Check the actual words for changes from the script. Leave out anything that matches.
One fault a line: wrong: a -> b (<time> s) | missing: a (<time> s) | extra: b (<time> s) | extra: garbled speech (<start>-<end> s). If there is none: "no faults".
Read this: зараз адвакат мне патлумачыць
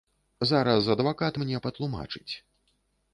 no faults